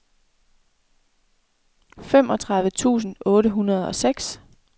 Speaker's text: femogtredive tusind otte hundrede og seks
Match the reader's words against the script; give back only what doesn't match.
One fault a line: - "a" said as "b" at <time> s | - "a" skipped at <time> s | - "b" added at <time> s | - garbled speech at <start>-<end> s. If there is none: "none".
none